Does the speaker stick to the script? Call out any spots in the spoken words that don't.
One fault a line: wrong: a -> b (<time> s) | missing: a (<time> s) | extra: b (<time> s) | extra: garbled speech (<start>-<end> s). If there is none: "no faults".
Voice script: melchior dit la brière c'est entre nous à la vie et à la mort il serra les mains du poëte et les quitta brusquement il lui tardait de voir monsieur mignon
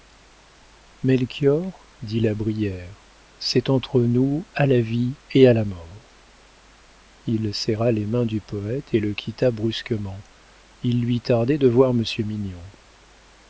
wrong: les -> le (9.0 s)